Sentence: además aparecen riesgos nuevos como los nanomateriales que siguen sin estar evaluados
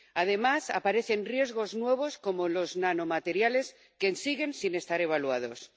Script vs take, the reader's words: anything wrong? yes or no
no